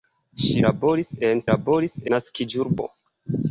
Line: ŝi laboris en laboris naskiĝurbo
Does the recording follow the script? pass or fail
pass